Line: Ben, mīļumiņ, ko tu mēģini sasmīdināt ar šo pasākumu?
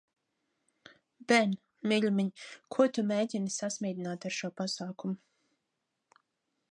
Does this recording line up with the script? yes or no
yes